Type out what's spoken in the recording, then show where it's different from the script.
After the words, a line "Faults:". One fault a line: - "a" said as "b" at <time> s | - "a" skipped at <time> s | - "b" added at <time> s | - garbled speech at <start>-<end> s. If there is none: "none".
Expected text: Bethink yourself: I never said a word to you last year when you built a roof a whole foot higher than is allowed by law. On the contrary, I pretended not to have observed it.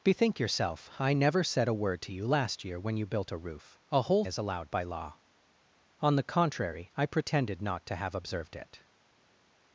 Bethink yourself: I never said a word to you last year when you built a roof a whole is allowed by law. On the contrary, I pretended not to have observed it.
Faults:
- "foot higher than" skipped at 4.2 s